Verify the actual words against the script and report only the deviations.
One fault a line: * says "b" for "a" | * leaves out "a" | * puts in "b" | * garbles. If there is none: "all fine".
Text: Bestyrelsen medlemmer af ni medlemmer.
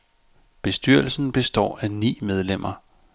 * says "består" for "medlemmer"